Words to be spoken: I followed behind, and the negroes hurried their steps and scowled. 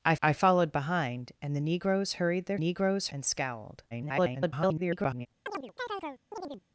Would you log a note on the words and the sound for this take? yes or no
yes